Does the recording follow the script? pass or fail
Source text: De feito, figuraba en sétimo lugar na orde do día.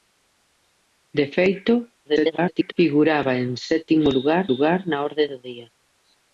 fail